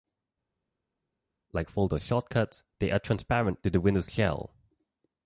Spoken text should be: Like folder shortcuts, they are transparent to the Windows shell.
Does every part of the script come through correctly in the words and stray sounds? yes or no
yes